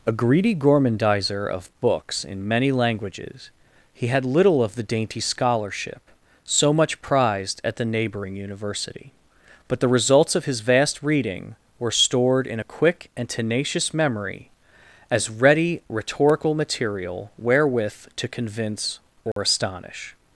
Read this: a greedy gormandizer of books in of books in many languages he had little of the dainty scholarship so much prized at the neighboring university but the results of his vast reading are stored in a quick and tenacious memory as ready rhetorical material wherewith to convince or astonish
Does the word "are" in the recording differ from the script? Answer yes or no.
yes